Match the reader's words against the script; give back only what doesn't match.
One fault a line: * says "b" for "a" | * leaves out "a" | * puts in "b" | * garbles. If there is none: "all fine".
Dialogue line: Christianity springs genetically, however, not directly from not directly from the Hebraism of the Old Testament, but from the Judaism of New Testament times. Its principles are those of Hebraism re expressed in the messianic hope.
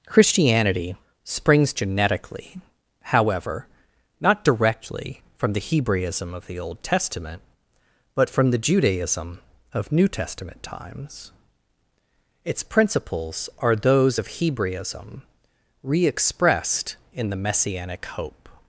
* leaves out "not directly from"